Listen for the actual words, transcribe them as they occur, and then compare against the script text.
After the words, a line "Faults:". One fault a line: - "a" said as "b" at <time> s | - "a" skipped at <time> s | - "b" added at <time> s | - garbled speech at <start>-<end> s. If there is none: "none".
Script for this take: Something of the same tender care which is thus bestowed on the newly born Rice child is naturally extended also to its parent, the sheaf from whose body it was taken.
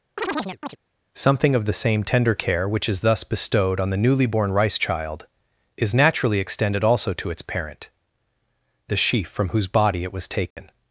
Something of the same tender care which is thus bestowed on the newly born Rice child is naturally extended also to its parent, the sheaf from whose body it was taken.
Faults:
none